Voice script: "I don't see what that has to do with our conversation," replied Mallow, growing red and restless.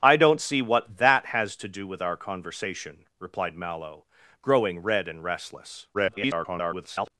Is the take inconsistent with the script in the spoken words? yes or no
yes